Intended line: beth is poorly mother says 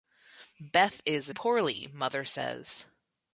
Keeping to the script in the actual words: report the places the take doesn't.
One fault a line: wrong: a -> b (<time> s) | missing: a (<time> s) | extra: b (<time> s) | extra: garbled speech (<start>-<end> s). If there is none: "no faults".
no faults